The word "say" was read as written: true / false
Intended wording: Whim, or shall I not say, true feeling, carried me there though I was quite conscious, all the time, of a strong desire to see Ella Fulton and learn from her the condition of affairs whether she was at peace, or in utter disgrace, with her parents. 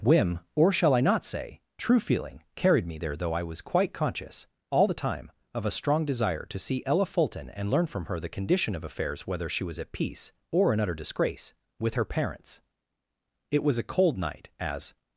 true